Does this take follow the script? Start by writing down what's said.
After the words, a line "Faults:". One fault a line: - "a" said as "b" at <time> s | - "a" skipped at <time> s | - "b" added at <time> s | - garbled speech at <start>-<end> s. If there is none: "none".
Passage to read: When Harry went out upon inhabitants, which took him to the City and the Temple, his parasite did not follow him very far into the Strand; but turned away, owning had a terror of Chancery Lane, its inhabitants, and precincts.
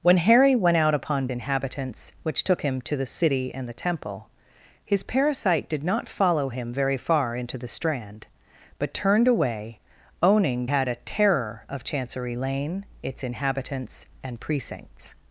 When Harry went out upon inhabitants, which took him to the City and the Temple, his parasite did not follow him very far into the Strand; but turned away, owning had a terror of Chancery Lane, its inhabitants, and precincts.
Faults:
none